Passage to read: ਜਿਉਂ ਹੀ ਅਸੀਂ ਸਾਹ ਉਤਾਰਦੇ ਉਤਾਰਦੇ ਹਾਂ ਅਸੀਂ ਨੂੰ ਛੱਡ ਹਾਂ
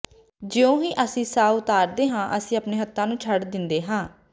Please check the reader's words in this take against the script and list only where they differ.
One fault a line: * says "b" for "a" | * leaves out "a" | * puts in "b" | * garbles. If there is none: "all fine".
* leaves out "ਉਤਾਰਦੇ"
* puts in "ਆਪਣੇ ਹੱਥਾਂ"
* puts in "ਦਿੰਦੇ"